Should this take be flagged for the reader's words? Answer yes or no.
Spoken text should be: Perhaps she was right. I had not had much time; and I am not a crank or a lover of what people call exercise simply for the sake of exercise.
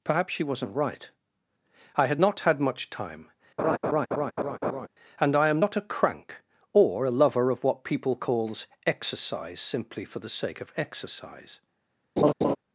yes